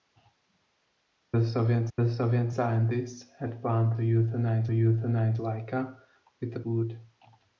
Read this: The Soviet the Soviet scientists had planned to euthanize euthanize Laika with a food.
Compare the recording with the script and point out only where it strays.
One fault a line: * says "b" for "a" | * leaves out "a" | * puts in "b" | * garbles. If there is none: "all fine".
all fine